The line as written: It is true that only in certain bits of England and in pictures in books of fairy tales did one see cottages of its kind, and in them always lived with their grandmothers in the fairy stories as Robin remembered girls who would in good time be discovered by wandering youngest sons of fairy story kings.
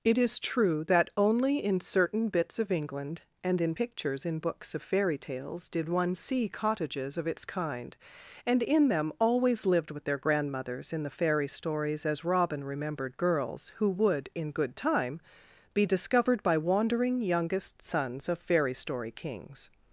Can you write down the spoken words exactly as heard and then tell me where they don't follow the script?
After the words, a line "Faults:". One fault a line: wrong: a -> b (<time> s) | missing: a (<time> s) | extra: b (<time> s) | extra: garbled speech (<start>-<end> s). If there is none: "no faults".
It is true that only in certain bits of England and in pictures in books of fairy tales did one see cottages of its kind, and in them always lived with their grandmothers in the fairy stories as Robin remembered girls who would in good time be discovered by wandering youngest sons of fairy story kings.
Faults:
no faults